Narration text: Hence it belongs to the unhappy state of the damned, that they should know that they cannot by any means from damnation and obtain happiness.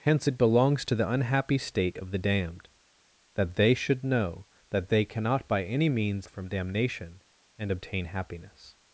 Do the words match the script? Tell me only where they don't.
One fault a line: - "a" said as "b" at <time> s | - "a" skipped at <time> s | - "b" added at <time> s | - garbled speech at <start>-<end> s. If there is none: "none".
none